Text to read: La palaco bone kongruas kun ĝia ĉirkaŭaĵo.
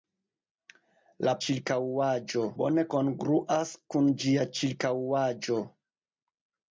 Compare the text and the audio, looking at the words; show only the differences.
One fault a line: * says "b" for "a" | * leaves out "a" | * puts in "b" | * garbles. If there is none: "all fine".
* says "ĉirkaŭaĵo" for "palaco"